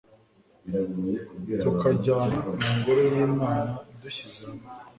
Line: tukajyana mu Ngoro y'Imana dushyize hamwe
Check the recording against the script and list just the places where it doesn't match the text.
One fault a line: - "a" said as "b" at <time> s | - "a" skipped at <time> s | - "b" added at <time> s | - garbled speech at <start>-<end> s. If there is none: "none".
none